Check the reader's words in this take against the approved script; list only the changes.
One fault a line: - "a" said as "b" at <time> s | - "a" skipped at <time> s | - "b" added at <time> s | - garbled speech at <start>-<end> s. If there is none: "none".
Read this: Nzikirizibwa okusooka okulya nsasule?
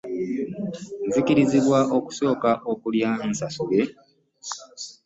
none